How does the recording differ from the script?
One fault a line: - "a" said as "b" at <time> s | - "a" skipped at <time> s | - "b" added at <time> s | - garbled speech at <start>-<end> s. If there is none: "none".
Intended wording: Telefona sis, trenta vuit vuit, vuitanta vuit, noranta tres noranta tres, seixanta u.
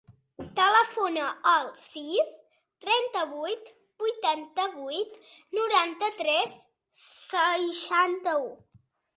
- "al" added at 1.5 s
- "vuit" skipped at 3.7 s
- "noranta tres" skipped at 6.6 s